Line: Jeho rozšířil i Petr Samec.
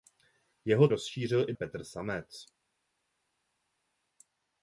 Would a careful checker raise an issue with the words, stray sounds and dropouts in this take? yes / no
no